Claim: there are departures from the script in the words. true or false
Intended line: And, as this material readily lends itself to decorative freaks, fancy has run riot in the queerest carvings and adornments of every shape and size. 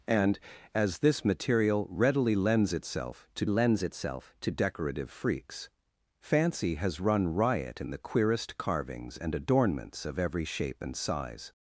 true